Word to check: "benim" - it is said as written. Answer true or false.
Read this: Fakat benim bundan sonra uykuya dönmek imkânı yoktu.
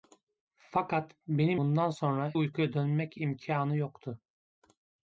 true